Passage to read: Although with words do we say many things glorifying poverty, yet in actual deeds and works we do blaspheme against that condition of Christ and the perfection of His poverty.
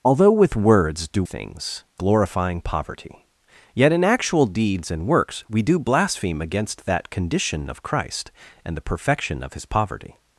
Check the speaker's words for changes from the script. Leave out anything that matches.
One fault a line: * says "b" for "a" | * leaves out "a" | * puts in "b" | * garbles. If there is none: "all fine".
* leaves out "we say many"